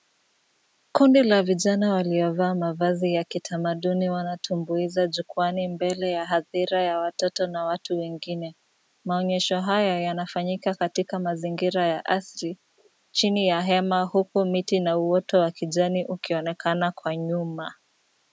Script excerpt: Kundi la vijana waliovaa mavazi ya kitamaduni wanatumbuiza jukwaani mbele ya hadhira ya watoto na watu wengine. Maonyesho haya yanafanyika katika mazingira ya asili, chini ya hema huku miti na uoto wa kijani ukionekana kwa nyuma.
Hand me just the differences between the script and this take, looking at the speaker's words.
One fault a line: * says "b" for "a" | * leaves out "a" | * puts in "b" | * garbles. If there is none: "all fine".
all fine